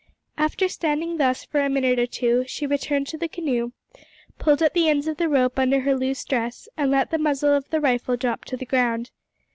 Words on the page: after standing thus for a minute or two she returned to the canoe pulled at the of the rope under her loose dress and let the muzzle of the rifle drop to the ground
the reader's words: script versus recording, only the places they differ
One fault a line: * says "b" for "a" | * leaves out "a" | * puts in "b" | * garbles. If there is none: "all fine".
* puts in "ends"